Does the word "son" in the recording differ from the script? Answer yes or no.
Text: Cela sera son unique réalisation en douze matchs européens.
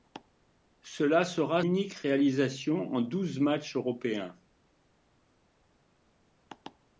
yes